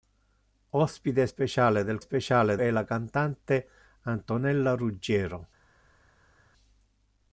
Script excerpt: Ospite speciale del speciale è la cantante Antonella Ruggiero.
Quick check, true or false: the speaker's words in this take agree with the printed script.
true